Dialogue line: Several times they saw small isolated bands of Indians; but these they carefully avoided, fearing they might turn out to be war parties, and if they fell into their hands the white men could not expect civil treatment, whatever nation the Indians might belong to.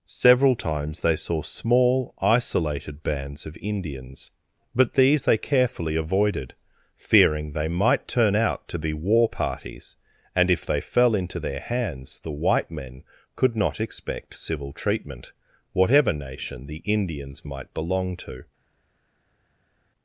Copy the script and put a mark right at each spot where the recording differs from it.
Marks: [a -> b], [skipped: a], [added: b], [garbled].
Several times they saw small isolated bands of Indians; but these they carefully avoided, fearing they might turn out to be war parties, and if they fell into their hands the white men could not expect civil treatment, whatever nation the Indians might belong to.